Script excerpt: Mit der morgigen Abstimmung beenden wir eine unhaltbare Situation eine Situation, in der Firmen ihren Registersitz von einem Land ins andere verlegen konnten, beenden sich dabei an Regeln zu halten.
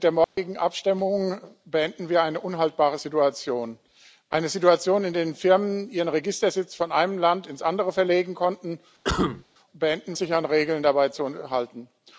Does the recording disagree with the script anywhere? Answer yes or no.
no